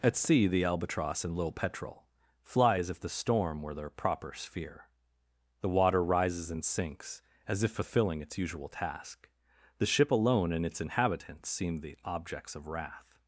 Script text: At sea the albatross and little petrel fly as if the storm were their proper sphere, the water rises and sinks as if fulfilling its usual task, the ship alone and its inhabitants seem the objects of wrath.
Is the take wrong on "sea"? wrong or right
right